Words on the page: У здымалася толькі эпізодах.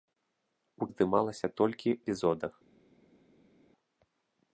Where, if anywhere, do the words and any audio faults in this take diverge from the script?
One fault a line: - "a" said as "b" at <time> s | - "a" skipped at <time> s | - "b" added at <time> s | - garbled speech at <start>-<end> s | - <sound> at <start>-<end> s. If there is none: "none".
none